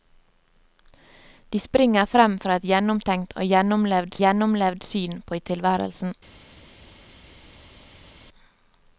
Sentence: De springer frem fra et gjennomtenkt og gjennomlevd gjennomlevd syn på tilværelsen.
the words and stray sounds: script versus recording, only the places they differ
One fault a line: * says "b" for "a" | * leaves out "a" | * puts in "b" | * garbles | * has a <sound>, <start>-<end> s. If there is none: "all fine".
all fine